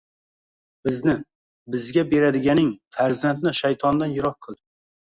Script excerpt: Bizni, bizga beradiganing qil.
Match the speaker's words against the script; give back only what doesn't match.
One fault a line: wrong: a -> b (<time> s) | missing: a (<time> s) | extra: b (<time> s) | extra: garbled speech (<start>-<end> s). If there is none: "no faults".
extra: farzandni shaytondan yiroq (3.0 s)